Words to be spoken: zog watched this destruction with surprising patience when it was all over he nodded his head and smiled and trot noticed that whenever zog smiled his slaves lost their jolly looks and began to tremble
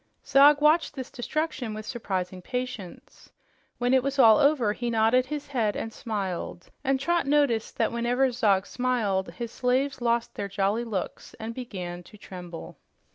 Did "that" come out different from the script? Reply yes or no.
no